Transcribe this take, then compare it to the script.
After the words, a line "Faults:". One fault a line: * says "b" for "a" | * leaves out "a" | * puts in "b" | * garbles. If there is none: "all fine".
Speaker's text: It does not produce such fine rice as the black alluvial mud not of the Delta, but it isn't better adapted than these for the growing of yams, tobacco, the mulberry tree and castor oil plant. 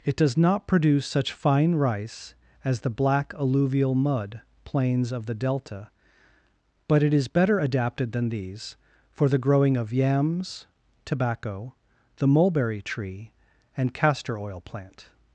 It does not produce such fine rice as the black alluvial mud plains of the Delta, but it is better adapted than these for the growing of yams, tobacco, the mulberry tree and castor oil plant.
Faults:
* says "plains" for "not"
* says "is" for "isn't"